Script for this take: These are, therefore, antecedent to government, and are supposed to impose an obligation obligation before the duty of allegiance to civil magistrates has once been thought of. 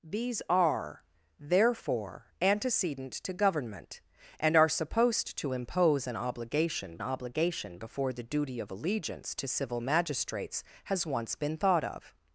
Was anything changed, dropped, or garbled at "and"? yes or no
no